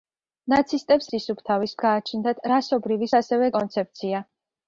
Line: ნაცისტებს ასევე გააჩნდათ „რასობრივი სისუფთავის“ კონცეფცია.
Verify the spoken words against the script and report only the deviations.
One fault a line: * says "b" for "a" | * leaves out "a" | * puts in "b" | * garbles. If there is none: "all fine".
* says "სისუფთავის" for "ასევე"
* says "ასევე" for "სისუფთავის"